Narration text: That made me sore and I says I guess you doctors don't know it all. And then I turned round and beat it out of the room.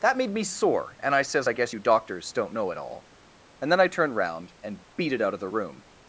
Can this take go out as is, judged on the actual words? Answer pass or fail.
pass